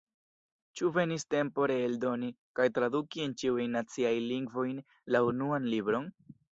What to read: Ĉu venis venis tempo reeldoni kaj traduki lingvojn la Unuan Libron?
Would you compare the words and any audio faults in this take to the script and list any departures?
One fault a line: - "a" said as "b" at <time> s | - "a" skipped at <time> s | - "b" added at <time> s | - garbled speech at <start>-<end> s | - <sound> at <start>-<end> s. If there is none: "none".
- "venis" skipped at 1.2 s
- "en ĉiujn naciajn" added at 3.3 s